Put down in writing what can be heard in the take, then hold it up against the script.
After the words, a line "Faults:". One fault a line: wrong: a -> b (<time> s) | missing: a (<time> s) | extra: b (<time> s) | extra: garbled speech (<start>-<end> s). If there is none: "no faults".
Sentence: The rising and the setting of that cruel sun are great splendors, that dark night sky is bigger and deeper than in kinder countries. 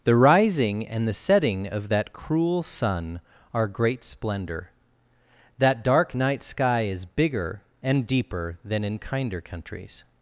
The rising and the setting of that cruel sun are great splendor, that dark night sky is bigger and deeper than in kinder countries.
Faults:
wrong: splendors -> splendor (4.0 s)